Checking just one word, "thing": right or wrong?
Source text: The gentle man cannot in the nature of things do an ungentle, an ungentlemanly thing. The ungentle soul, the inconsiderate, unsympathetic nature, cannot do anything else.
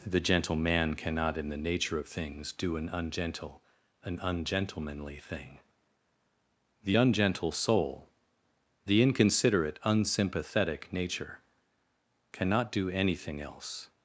right